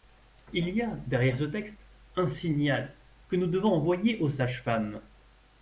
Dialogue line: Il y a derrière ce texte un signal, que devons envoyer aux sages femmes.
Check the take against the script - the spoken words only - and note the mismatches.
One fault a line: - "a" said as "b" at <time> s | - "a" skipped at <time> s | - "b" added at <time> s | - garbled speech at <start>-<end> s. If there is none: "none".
- "nous" added at 3.3 s